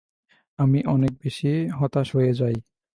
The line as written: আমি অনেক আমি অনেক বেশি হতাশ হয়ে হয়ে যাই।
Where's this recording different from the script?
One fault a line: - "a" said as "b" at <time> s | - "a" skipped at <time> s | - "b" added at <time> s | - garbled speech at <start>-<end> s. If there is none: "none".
- "আমি অনেক" skipped at 1.1 s
- "হয়ে" skipped at 2.3 s